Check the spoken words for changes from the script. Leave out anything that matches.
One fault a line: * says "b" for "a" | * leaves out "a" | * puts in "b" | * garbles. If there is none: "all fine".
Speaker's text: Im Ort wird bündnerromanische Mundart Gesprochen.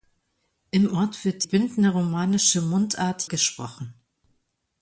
all fine